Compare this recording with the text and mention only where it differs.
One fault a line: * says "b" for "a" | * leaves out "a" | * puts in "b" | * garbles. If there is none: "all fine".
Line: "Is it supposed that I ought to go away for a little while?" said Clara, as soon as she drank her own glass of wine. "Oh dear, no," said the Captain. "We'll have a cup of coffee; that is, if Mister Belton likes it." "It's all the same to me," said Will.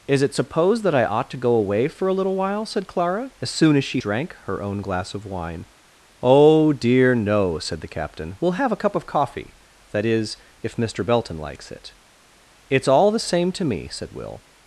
all fine